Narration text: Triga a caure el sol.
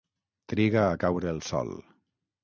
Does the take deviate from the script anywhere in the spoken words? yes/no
no